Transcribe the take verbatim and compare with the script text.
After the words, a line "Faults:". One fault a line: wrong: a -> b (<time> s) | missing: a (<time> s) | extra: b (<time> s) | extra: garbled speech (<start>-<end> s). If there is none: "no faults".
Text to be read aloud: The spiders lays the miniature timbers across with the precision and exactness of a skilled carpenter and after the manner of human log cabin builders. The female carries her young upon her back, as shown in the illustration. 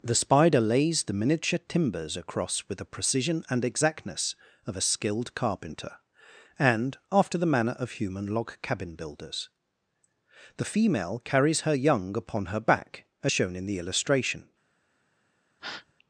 The spider lays the miniature timbers across with the precision and exactness of a skilled carpenter and after the manner of human log cabin builders. The female carries her young upon her back, as shown in the illustration.
Faults:
wrong: spiders -> spider (0.1 s)